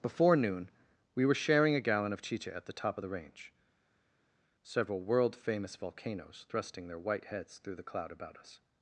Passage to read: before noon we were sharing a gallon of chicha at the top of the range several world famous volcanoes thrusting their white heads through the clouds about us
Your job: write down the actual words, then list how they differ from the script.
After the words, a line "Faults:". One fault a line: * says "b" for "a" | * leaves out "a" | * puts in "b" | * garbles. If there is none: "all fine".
before noon we were sharing a gallon of chicha at the top of the range several world famous volcanoes thrusting their white heads through the cloud about us
Faults:
* says "cloud" for "clouds"